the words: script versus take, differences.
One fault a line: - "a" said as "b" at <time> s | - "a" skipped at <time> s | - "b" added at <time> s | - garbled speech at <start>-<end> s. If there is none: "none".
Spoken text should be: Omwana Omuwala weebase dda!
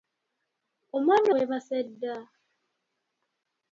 - "Omuwala" skipped at 1.3 s